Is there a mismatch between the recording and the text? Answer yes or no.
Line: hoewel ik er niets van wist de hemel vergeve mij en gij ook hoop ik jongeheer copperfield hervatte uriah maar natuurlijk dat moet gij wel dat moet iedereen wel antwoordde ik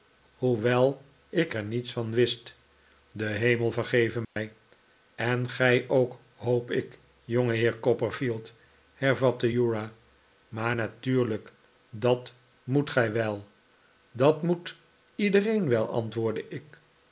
no